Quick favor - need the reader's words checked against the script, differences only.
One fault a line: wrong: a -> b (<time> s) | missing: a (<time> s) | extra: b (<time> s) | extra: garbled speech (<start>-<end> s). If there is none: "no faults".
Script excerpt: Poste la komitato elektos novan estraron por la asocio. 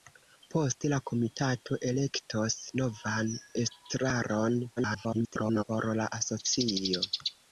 extra: garbled speech (4.8-5.6 s)